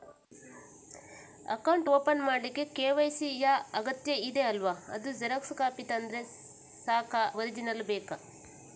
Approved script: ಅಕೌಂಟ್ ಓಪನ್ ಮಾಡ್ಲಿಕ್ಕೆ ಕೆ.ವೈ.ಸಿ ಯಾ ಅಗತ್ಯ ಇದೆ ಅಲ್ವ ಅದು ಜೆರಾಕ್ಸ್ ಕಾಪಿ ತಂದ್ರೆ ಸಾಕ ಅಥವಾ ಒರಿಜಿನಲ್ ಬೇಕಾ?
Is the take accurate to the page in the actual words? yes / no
no